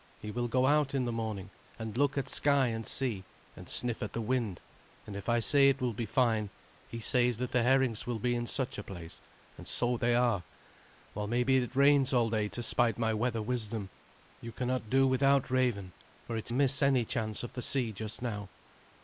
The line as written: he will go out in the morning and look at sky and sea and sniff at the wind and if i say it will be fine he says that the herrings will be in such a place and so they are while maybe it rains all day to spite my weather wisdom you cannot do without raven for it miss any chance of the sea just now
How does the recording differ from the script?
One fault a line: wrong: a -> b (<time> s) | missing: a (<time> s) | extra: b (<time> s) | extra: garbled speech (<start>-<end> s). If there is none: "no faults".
no faults